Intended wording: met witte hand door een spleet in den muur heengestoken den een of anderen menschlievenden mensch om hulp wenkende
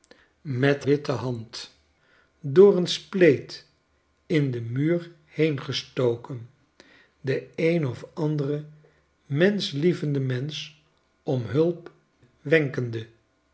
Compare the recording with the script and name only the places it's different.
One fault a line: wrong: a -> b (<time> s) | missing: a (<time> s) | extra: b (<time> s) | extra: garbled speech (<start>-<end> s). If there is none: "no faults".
no faults